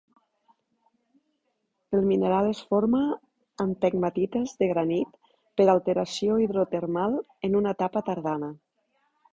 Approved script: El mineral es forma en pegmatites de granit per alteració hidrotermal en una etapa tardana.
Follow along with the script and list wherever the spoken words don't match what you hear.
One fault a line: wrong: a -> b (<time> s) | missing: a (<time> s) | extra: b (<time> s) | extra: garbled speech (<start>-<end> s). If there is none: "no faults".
no faults